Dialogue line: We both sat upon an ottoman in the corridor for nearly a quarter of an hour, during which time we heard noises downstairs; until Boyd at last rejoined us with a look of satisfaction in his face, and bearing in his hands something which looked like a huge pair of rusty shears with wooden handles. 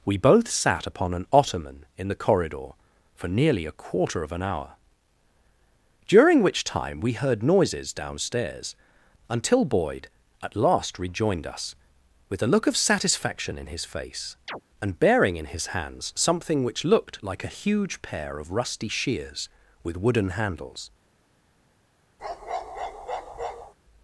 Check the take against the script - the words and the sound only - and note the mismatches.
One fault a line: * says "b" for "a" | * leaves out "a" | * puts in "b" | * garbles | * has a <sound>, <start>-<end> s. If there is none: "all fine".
* has a chirp, 14.5-14.6 s
* has a bark, 22.2-23.7 s